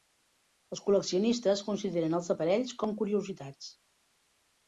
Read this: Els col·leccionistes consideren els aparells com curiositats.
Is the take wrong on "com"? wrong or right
right